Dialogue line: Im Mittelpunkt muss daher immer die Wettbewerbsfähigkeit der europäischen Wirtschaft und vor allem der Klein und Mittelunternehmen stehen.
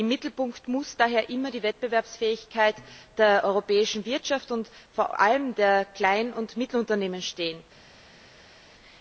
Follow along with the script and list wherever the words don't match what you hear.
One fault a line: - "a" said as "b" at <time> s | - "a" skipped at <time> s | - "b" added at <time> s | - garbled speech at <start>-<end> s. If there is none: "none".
none